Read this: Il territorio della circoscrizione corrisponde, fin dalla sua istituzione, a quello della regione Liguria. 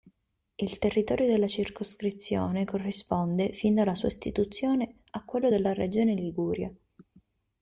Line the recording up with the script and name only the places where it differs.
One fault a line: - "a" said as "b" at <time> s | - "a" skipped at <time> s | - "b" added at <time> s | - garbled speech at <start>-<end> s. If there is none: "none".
none